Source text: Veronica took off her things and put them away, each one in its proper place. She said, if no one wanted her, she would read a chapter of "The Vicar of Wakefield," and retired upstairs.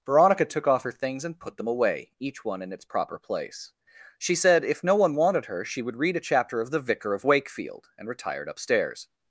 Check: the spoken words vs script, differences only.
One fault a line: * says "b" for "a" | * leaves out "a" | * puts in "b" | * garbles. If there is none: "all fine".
all fine